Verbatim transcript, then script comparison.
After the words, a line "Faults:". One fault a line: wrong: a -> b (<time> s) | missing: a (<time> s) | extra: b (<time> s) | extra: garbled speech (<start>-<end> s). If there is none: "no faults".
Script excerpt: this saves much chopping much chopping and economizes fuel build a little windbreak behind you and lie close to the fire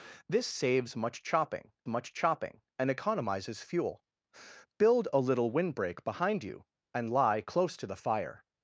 this saves much chopping much chopping and economizes fuel build a little windbreak behind you and lie close to the fire
Faults:
no faults